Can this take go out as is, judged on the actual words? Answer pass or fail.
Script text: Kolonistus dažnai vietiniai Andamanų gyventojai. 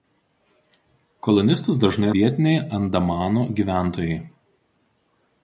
pass